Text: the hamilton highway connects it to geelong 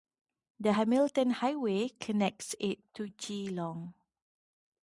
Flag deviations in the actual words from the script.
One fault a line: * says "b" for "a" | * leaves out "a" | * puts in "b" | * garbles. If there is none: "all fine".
all fine